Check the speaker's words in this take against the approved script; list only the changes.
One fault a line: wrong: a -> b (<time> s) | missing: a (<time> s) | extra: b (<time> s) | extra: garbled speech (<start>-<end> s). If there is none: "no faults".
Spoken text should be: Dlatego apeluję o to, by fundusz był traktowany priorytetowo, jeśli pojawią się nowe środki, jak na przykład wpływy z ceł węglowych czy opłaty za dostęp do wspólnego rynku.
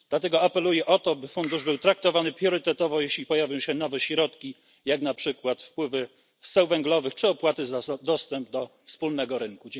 no faults